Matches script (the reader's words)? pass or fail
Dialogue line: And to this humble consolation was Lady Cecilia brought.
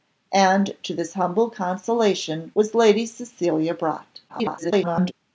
fail